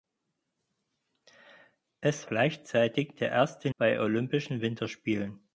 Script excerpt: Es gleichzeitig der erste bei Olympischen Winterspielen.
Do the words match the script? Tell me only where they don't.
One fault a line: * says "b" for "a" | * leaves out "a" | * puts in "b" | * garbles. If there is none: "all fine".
all fine